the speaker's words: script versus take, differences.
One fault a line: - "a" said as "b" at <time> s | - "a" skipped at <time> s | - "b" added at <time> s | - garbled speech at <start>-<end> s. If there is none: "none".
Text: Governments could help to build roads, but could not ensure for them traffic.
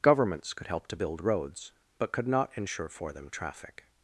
none